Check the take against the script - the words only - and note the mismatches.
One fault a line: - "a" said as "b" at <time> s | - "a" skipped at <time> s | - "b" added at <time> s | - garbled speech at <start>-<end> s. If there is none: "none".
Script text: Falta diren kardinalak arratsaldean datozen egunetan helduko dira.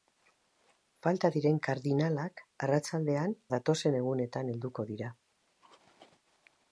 none